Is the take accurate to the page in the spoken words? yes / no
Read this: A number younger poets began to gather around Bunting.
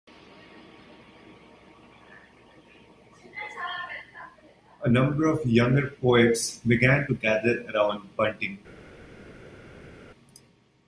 no